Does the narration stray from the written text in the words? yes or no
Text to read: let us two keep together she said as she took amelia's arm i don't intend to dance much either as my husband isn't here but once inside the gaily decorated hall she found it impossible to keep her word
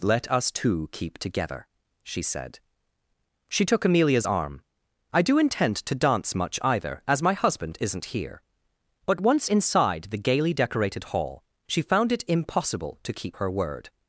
yes